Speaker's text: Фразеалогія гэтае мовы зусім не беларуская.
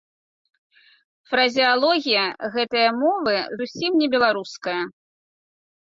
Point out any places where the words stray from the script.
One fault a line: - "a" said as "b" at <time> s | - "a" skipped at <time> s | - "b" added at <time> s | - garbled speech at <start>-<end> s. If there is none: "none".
none